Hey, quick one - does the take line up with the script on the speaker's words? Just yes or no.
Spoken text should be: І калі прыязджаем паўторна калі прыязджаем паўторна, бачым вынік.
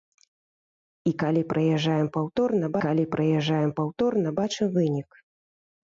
yes